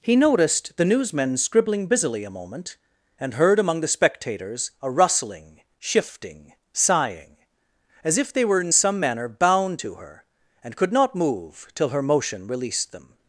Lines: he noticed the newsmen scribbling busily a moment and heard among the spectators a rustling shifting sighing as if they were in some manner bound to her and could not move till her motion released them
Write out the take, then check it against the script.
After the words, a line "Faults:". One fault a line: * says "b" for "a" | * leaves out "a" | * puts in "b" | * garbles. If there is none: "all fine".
he noticed the newsmen scribbling busily a moment and heard among the spectators a rustling shifting sighing as if they were in some manner bound to her and could not move till her motion released them
Faults:
all fine